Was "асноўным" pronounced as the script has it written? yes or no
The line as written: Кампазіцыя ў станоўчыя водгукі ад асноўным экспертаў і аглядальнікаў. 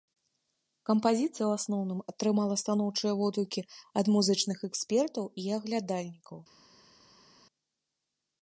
no